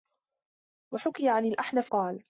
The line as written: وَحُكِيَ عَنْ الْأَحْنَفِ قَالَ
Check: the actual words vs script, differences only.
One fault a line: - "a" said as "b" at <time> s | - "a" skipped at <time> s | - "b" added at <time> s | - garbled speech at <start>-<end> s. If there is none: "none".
none